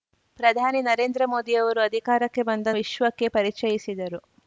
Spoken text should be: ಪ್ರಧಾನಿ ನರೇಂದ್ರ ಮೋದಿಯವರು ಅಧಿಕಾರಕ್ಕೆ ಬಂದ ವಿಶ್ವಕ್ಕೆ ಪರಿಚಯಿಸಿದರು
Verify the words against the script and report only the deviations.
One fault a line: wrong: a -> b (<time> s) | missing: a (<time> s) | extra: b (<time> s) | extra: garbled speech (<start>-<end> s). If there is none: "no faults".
no faults